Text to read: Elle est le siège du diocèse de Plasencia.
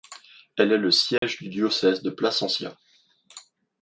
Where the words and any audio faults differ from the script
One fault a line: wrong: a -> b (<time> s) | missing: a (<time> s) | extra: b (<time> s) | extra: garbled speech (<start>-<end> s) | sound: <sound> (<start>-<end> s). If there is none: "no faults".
sound: dropout (1.2-1.2 s)